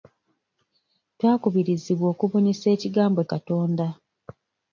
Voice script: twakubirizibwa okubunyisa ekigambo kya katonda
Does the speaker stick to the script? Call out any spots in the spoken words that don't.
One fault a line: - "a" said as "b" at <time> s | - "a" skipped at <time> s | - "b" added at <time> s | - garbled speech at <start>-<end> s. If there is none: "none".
- "kya" skipped at 3.2 s